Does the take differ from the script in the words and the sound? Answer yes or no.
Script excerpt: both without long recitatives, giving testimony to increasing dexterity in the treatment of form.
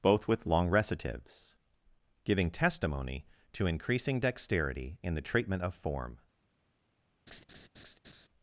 yes